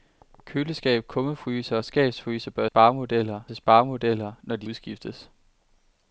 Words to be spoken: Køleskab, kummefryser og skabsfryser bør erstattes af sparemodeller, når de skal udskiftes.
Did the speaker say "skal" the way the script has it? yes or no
no